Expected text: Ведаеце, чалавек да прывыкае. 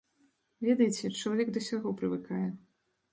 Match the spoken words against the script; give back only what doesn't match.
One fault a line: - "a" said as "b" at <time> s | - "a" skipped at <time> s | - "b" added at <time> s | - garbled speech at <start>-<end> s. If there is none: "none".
- "ўсяго" added at 1.6 s